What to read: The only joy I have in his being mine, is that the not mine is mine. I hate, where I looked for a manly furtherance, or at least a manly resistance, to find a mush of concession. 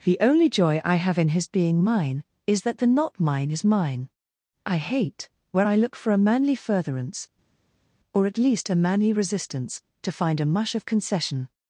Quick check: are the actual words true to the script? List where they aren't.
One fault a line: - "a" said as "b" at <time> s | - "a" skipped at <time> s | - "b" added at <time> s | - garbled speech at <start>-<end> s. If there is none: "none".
- "looked" said as "look" at 5.7 s